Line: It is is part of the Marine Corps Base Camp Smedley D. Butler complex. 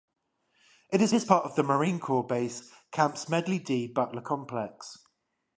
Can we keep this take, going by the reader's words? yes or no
yes